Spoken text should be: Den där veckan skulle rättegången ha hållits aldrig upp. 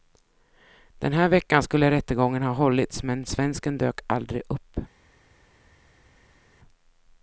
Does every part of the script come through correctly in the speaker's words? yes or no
no